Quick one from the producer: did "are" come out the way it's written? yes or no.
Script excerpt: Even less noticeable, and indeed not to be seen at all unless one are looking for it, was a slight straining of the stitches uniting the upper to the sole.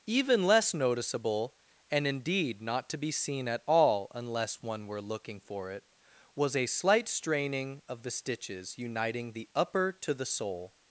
no